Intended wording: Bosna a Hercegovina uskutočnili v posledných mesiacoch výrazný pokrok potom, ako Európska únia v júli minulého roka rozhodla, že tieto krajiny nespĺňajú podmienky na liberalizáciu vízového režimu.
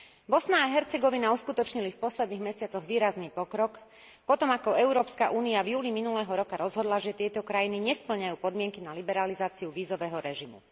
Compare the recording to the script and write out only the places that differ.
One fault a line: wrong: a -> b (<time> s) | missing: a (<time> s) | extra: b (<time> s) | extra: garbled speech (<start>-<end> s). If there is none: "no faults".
no faults